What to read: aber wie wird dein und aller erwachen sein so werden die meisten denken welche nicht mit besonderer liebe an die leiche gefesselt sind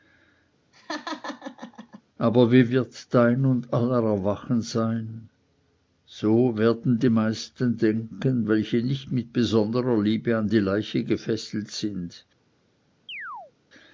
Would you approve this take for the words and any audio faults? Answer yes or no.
no